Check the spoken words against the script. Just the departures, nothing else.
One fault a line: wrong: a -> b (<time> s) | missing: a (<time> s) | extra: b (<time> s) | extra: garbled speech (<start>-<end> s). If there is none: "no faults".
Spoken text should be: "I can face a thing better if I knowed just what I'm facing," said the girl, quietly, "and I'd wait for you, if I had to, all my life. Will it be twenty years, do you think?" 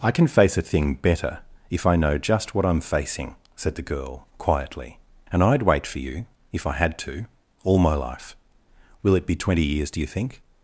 wrong: knowed -> know (1.9 s)